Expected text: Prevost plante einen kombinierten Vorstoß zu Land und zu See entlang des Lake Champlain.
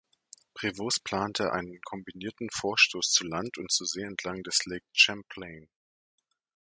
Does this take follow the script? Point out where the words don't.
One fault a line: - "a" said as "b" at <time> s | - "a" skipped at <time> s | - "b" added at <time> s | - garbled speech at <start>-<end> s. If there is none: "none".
none